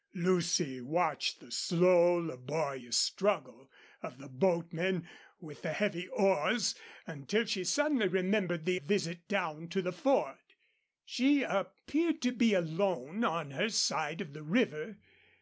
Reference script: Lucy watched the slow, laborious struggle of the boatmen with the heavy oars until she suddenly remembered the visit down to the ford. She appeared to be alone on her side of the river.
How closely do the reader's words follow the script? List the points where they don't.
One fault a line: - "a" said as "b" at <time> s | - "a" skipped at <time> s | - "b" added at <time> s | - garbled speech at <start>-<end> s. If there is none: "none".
none